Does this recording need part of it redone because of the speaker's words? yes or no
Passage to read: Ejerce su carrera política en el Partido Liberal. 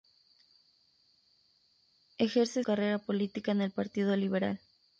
yes